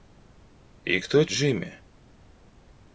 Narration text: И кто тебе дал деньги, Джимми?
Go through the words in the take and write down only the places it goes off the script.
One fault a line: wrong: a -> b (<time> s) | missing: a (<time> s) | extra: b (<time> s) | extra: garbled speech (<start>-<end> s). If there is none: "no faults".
missing: тебе дал деньги (1.2 s)